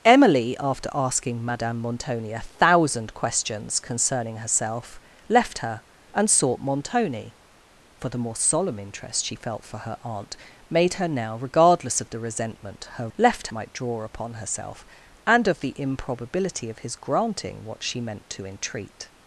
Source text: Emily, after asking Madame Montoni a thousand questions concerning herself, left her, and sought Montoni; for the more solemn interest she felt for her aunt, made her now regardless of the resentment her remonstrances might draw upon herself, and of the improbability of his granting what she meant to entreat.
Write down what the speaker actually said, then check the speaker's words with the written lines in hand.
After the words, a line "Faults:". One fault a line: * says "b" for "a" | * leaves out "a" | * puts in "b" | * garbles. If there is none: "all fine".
Emily, after asking Madame Montoni a thousand questions concerning herself, left her, and sought Montoni; for the more solemn interest she felt for her aunt, made her now regardless of the resentment her left might draw upon herself, and of the improbability of his granting what she meant to entreat.
Faults:
* says "left" for "remonstrances"